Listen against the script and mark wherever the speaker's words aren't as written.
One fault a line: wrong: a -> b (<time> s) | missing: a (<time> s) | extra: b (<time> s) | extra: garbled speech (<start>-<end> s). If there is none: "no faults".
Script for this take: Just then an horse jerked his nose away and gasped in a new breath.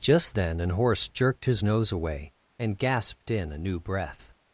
no faults